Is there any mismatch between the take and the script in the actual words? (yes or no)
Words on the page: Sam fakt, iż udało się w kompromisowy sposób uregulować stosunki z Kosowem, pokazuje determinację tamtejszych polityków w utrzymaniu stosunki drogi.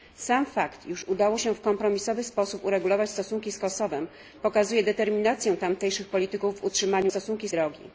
no